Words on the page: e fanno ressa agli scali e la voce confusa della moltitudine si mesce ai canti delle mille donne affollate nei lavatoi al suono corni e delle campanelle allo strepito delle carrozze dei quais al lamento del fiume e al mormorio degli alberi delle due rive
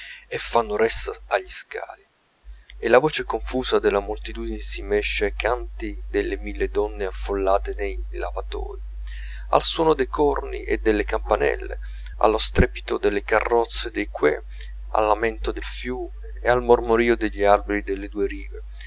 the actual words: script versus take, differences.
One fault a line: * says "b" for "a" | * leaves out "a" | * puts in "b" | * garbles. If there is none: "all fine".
* puts in "dei"